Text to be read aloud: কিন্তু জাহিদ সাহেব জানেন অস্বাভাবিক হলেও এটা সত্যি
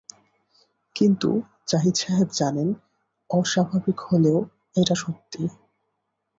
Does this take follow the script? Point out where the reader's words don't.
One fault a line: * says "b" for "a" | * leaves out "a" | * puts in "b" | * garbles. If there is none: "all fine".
all fine